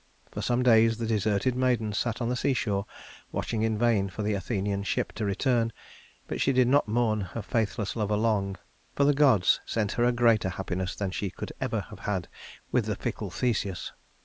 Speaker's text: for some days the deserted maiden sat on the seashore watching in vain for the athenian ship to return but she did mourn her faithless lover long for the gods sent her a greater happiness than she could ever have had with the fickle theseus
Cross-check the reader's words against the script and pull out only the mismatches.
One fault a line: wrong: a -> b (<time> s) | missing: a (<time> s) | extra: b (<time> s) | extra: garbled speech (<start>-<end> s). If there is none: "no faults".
extra: not (6.7 s)